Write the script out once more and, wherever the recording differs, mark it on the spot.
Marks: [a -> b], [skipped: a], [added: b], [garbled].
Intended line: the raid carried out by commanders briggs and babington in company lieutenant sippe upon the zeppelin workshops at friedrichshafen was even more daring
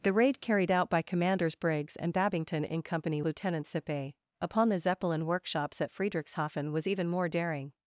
the raid carried out by commanders briggs and babington in company lieutenant sippe upon the zeppelin workshops at friedrichshafen was even more daring